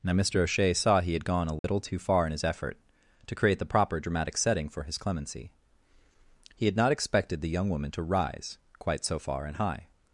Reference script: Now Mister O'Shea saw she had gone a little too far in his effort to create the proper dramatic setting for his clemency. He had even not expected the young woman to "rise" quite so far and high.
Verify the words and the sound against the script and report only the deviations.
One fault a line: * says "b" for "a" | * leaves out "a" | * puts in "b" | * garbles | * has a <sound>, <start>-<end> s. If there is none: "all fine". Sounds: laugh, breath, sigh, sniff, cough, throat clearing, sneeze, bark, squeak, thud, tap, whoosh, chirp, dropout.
* says "he" for "she"
* has a dropout, 1.6-1.6 s
* leaves out "even"